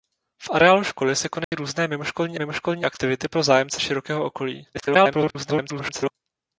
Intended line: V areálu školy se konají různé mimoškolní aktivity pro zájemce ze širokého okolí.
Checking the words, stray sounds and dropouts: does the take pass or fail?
fail